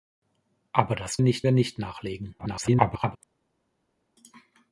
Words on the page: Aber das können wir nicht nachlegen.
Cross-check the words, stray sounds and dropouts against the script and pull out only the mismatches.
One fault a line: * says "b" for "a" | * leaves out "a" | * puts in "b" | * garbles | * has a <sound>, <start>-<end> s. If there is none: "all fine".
* says "nicht" for "können"
* garbles